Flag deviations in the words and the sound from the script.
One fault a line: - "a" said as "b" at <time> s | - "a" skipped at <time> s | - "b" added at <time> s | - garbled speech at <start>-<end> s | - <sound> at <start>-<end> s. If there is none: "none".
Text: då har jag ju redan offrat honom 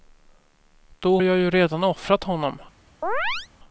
- "har" skipped at 1.2 s
- chirp at 3.0-3.5 s